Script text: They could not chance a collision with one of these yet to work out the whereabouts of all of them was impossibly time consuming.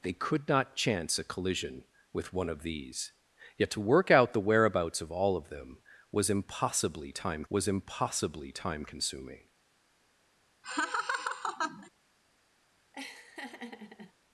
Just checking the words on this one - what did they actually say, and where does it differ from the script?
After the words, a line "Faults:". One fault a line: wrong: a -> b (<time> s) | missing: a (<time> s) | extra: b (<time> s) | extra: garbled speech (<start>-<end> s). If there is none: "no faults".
They could not chance a collision with one of these yet to work out the whereabouts of all of them was impossibly time was impossibly time consuming.
Faults:
extra: was impossibly time (7.5 s)